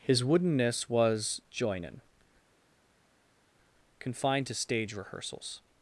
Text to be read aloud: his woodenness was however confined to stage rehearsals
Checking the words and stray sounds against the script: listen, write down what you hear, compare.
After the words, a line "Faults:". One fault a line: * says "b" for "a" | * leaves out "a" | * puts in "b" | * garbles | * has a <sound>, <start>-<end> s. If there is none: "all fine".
his woodenness was joinin confined to stage rehearsals
Faults:
* says "joinin" for "however"